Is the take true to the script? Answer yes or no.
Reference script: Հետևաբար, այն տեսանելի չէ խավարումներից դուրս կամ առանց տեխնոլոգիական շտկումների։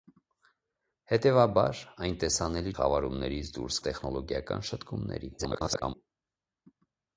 no